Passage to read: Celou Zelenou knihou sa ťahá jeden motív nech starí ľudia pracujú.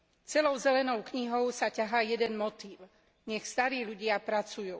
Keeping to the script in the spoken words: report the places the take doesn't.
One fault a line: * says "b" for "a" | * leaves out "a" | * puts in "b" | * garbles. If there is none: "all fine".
all fine